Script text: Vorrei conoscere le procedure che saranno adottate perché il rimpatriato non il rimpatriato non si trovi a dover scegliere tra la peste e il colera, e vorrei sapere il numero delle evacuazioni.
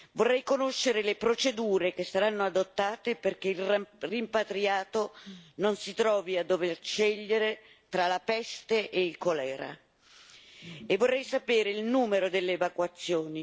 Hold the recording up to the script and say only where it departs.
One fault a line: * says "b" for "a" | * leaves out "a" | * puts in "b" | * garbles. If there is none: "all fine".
* leaves out "il rimpatriato non"